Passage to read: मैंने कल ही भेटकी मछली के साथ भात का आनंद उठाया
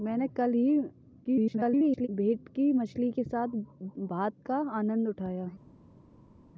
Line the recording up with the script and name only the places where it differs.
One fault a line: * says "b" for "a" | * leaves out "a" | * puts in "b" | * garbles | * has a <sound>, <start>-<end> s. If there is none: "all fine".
* garbles